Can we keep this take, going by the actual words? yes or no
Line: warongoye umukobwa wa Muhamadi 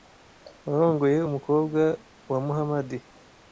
yes